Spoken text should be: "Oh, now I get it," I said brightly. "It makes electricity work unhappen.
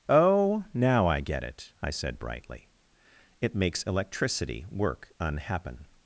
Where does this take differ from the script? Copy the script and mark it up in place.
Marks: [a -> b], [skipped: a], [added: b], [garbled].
"Oh, now I get it," I said brightly. "It makes electricity work unhappen.